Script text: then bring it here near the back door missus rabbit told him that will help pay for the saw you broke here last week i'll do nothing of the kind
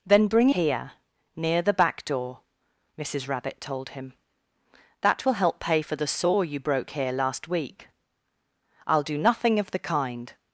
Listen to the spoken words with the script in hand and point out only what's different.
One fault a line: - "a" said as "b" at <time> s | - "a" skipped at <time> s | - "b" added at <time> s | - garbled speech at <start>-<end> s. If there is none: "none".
- "it" skipped at 0.5 s